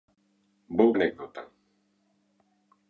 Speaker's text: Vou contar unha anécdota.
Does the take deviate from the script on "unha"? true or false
true